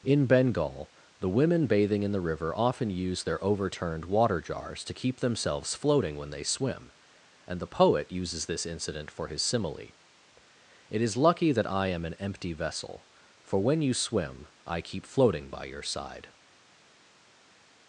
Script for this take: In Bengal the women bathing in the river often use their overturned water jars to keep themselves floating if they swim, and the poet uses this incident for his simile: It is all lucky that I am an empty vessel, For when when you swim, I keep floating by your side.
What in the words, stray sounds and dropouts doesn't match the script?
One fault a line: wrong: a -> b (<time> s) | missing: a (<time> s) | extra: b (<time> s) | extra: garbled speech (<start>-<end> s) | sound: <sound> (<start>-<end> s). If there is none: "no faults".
wrong: if -> when (6.2 s)
missing: all (11.2 s)
missing: when (13.8 s)